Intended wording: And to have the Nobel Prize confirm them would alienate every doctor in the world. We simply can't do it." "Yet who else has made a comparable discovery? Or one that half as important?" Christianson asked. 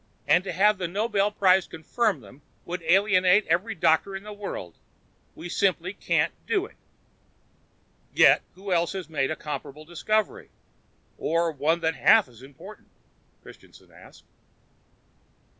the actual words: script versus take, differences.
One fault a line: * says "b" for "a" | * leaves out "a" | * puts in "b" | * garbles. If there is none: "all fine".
all fine